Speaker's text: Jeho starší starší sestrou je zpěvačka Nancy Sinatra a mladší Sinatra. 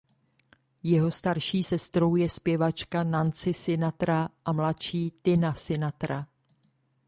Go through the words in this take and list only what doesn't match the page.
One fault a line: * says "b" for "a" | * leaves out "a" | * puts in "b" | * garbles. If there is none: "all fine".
* leaves out "starší"
* puts in "Tina"